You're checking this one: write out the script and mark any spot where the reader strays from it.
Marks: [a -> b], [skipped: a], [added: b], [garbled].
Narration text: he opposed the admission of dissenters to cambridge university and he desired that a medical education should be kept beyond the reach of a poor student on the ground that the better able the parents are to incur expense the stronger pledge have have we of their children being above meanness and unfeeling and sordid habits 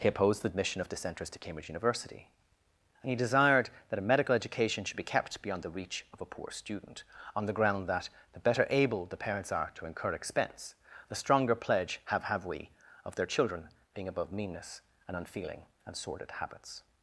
he opposed the admission of dissenters to cambridge university and he desired that a medical education should be kept beyond the reach of a poor student on the ground that the better able the parents are to incur expense the stronger pledge have have we of their children being above meanness and unfeeling and sordid habits